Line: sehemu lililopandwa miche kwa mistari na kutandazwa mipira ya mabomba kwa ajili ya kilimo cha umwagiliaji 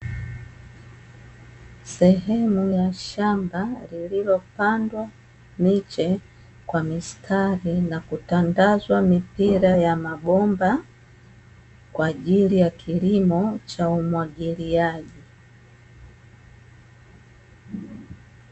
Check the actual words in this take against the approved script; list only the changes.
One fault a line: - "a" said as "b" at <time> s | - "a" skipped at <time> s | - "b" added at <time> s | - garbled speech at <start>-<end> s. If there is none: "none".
- "ya shamba" added at 2.8 s